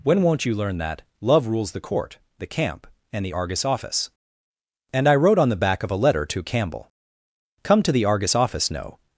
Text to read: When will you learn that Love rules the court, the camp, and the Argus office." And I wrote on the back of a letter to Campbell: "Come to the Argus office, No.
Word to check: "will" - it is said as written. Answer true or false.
false